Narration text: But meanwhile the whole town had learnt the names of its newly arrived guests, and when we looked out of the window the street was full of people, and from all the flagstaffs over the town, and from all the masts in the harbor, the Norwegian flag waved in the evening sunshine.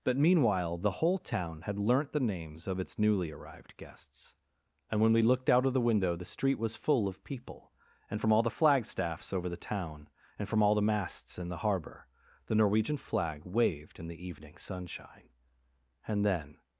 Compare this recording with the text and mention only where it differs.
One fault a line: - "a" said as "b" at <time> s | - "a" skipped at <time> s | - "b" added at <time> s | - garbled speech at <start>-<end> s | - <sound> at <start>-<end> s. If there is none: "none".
- "And then" added at 16.1 s